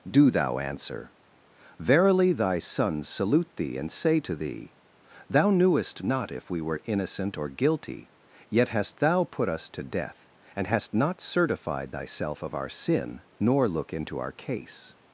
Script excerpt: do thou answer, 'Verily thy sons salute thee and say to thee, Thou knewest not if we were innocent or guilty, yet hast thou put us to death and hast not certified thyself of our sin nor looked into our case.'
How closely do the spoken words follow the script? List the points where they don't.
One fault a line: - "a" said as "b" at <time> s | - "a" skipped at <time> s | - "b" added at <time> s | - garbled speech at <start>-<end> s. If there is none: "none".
- "looked" said as "look" at 13.7 s